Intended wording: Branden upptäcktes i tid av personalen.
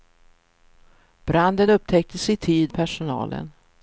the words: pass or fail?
fail